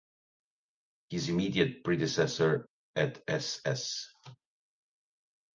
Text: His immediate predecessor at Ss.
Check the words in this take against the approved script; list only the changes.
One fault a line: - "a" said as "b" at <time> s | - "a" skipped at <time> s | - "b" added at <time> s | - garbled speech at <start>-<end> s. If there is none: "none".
none